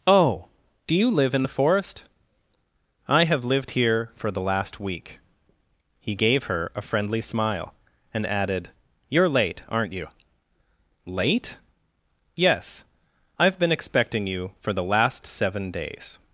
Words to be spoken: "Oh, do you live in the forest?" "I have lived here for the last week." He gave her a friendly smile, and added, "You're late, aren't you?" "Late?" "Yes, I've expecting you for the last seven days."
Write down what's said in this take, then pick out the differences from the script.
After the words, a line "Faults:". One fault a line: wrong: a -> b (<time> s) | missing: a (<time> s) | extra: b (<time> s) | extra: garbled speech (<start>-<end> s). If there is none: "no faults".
"Oh, do you live in the forest?" "I have lived here for the last week." He gave her a friendly smile, and added, "You're late, aren't you?" "Late?" "Yes, I've been expecting you for the last seven days."
Faults:
extra: been (13.6 s)